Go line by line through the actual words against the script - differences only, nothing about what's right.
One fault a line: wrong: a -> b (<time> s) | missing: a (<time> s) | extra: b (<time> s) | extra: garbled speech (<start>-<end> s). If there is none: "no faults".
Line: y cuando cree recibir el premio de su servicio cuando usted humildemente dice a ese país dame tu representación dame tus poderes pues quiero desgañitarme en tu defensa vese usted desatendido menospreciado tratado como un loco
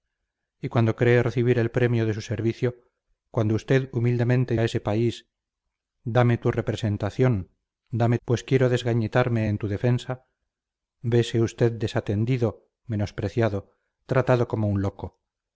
missing: dice (4.5 s)
missing: tus poderes (8.2 s)